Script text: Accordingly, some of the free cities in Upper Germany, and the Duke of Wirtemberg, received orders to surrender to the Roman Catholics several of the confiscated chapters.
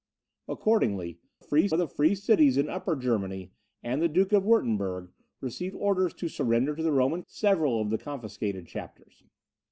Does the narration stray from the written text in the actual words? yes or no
yes